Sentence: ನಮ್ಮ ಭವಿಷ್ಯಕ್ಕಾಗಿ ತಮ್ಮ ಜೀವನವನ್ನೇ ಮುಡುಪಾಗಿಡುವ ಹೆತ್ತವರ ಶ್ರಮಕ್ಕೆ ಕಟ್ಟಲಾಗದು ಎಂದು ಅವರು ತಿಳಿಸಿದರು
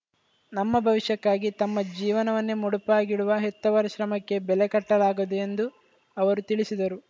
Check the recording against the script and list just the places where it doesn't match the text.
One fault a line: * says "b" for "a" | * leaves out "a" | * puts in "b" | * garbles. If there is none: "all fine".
* puts in "ಬೆಲೆ"